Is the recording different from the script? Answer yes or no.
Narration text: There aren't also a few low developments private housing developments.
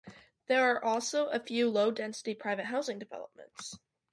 yes